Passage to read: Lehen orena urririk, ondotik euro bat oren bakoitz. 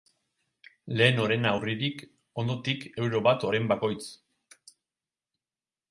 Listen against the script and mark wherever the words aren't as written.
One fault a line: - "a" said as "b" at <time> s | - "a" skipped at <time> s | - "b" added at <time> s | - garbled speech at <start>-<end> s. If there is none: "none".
none